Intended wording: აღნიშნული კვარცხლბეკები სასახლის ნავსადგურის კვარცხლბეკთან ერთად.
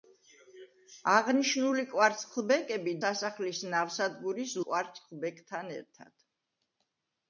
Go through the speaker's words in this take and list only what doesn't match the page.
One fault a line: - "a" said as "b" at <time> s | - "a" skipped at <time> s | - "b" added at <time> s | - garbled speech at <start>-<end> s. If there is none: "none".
none